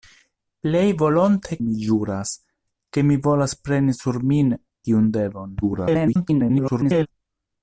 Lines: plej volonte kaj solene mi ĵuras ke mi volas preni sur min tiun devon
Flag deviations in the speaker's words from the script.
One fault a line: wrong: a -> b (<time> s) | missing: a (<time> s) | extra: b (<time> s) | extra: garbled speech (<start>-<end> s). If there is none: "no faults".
missing: kaj solene (1.6 s)
extra: garbled speech (5.6-7.1 s)